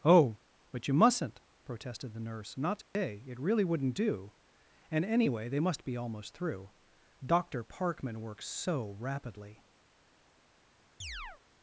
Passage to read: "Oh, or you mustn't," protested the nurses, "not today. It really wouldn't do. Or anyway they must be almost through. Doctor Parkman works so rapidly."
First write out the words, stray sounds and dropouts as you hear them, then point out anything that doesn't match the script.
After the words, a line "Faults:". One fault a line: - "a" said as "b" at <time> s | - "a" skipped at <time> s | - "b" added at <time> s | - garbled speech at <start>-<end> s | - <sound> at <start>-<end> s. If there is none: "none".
"Oh, but you mustn't," protested the nurse, "not today. It really wouldn't do. And anyway they must be almost through. Doctor Parkman works so rapidly."
Faults:
- "or" said as "but" at 0.7 s
- "nurses" said as "nurse" at 2.2 s
- dropout at 2.8-3.0 s
- "Or" said as "And" at 4.9 s
- chirp at 11.0-11.4 s